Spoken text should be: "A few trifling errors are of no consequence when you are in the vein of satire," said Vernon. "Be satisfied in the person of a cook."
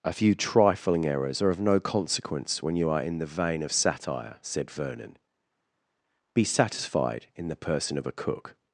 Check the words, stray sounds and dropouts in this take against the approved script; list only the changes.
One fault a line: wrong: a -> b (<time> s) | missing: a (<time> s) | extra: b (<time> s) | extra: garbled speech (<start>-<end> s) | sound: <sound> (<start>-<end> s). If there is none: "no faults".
no faults